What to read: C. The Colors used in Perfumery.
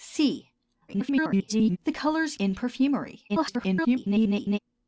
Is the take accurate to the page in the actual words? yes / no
no